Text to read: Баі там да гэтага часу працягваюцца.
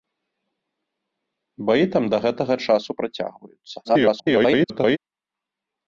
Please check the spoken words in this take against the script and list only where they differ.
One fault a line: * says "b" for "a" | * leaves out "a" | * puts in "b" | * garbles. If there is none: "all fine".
* garbles